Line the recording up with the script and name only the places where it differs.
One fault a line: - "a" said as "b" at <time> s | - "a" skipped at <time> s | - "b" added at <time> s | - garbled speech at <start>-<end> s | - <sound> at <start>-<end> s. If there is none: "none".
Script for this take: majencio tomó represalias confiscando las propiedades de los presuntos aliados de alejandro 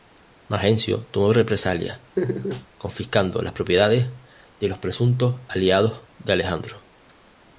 - laugh at 2.2-2.7 s